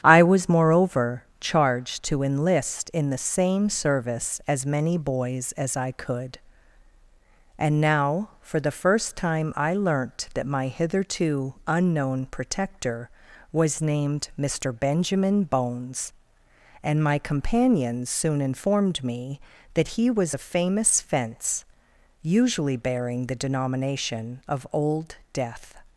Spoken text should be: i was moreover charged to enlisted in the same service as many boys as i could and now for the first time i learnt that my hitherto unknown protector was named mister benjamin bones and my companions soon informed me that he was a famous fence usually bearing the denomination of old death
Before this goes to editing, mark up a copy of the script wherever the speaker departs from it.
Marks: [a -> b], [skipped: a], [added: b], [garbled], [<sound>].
i was moreover charged to [enlisted -> enlist] in the same service as many boys as i could and now for the first time i learnt that my hitherto unknown protector was named mister benjamin bones and my companions soon informed me that he was a famous fence usually bearing the denomination of old death